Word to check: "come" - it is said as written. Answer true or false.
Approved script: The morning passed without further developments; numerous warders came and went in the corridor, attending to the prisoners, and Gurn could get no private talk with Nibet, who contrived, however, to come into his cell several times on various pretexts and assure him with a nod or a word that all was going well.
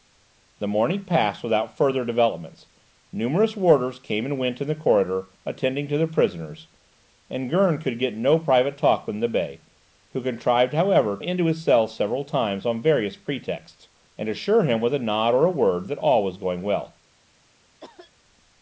false